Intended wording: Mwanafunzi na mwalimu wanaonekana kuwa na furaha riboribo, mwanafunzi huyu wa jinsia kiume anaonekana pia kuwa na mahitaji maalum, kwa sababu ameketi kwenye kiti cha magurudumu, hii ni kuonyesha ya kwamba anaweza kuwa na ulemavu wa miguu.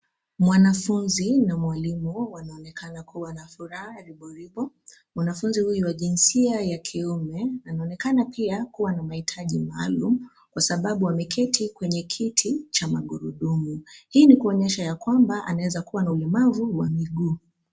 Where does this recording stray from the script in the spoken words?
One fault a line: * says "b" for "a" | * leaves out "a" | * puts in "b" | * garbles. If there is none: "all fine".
* puts in "ya"